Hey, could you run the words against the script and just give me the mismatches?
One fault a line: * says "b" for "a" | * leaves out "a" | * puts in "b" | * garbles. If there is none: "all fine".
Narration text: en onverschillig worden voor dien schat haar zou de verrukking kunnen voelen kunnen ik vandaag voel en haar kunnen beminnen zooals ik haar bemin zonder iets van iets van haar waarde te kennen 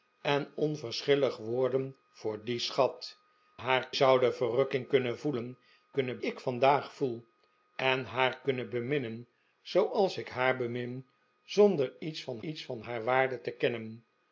all fine